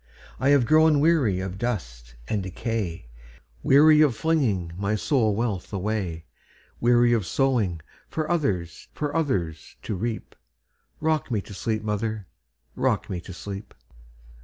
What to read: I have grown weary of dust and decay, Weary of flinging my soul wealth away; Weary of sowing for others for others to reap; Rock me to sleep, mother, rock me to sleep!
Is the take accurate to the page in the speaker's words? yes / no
yes